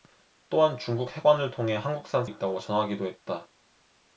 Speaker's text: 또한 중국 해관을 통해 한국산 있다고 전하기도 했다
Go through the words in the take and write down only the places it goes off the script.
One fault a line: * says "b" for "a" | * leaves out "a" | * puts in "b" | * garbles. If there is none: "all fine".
all fine